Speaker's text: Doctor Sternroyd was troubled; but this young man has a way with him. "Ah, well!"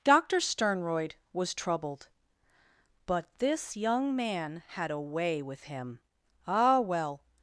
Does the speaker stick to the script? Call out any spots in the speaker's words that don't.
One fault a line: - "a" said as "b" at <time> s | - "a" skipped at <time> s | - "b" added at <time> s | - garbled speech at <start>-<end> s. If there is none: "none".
- "has" said as "had" at 4.7 s